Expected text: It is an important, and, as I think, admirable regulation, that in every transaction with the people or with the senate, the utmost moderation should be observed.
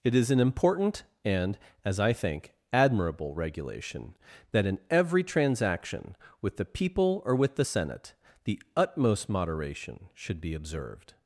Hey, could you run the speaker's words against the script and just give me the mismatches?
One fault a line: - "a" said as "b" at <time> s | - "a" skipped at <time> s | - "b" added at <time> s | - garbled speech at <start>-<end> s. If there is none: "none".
none